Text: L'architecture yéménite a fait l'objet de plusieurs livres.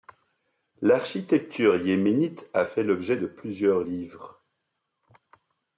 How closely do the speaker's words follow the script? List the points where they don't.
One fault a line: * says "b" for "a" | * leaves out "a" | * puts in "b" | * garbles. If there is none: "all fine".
all fine